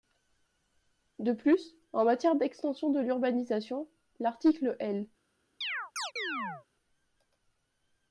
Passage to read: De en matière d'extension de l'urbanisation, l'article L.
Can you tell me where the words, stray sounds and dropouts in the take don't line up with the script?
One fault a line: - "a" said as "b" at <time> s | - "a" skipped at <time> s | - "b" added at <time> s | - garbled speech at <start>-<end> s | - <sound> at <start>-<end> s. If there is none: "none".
- "plus" added at 1.3 s
- chirp at 5.6-6.7 s